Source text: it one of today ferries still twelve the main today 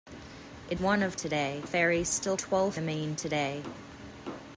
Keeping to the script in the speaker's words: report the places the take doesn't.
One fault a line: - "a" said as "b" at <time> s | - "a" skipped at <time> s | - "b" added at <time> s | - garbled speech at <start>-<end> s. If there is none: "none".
none